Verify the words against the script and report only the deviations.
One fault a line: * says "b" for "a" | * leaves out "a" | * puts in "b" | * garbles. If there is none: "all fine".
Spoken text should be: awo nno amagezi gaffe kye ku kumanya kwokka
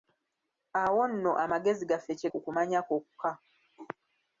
all fine